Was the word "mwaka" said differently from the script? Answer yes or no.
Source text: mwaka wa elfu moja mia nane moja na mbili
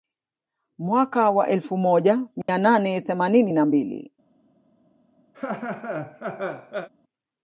no